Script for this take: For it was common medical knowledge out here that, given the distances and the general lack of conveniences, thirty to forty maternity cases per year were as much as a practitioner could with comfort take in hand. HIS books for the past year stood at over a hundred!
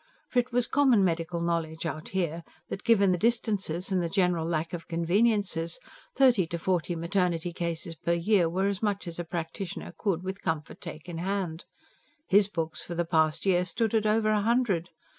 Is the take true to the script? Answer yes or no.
yes